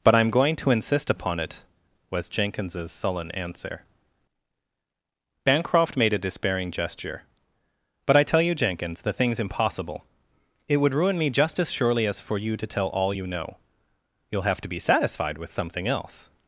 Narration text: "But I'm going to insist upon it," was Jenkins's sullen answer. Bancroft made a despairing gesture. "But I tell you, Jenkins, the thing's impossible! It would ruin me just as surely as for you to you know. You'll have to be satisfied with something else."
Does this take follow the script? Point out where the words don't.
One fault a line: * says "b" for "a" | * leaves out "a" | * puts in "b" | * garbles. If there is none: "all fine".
* puts in "tell all"